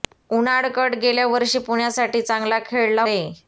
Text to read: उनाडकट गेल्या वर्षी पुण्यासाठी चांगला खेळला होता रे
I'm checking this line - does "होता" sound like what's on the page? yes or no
no